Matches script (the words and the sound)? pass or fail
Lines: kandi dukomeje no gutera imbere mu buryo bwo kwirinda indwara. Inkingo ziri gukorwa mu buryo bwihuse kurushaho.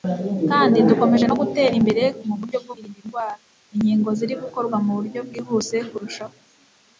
pass